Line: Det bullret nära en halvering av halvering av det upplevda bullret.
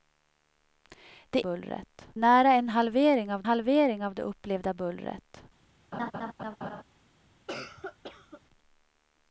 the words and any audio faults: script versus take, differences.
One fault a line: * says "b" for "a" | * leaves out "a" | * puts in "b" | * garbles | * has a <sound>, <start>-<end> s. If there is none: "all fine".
* has a laugh, 5.9-6.8 s
* has a cough, 7.5-8.4 s